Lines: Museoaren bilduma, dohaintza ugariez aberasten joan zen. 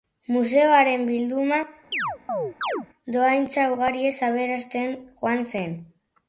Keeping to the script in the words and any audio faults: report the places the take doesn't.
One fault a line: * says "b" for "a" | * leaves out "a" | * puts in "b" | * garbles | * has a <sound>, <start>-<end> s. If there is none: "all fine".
* has a chirp, 1.9-2.9 s